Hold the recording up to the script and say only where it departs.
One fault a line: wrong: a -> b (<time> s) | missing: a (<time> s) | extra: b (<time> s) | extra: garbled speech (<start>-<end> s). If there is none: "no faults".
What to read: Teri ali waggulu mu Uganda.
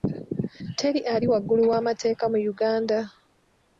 extra: w'amateeka (1.7 s)